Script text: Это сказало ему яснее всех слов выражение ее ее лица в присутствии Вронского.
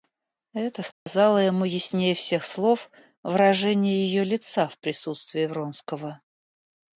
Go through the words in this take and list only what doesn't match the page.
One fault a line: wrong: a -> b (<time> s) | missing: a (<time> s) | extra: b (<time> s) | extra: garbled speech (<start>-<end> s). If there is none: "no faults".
missing: ее (4.2 s)